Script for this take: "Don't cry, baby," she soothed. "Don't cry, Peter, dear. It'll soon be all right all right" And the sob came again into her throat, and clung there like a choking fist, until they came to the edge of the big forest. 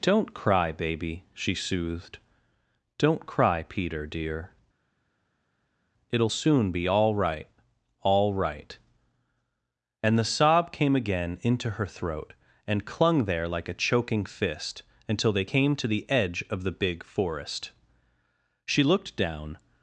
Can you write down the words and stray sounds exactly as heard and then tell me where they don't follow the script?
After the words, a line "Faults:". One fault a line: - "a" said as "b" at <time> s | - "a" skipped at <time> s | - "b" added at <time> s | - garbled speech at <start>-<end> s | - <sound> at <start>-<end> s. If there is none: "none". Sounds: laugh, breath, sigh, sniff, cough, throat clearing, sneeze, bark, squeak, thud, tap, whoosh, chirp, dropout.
"Don't cry, baby," she soothed. "Don't cry, Peter, dear. It'll soon be all right all right" And the sob came again into her throat, and clung there like a choking fist, until they came to the edge of the big forest. She looked down
Faults:
- "She looked down" added at 18.6 s